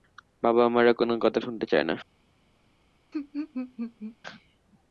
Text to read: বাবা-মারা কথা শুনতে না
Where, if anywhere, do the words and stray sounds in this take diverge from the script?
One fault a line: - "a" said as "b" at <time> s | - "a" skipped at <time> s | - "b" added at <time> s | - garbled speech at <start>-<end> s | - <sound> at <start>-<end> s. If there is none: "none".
- "কোনো" added at 0.9 s
- "চায়" added at 1.7 s
- laugh at 3.1-4.2 s